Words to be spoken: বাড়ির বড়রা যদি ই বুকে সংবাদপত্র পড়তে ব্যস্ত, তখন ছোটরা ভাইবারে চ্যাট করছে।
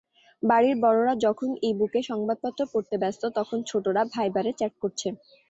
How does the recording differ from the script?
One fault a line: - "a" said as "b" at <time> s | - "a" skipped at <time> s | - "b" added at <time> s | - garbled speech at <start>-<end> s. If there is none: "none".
- "যদি" said as "যখন" at 1.2 s